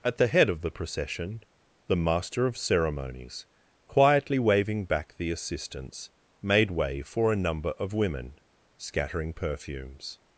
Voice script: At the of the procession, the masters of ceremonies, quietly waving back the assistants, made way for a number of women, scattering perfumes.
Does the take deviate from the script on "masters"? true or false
true